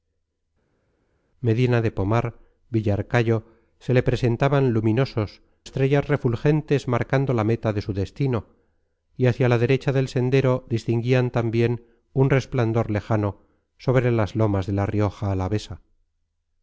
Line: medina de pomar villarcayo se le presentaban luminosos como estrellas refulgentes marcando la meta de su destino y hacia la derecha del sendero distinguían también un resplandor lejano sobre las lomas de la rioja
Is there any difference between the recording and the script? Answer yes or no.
yes